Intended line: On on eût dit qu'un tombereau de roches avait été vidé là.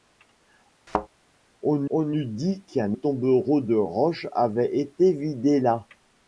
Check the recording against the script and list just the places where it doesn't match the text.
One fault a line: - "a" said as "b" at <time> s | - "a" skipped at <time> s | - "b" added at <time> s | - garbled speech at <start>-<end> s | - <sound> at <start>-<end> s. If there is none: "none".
- thud at 0.9-1.1 s